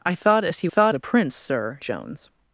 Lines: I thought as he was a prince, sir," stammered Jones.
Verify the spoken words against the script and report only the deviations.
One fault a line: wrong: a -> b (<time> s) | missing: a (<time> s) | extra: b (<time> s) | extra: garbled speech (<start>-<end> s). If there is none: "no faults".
wrong: was -> thought (0.7 s)
missing: stammered (1.8 s)